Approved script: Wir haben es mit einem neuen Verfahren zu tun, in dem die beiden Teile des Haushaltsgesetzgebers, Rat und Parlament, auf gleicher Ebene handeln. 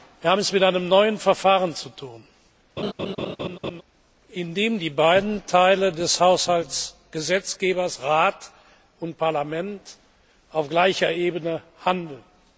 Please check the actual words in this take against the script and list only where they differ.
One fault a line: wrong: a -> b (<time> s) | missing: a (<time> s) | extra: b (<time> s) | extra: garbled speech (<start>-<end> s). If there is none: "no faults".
no faults